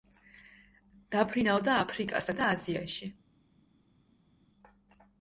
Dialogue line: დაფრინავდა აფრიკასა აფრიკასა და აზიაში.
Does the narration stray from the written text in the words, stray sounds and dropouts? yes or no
yes